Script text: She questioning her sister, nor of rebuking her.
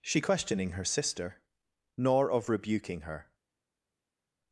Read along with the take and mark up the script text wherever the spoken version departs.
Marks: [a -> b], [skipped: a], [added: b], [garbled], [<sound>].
She questioning her sister, nor of rebuking her.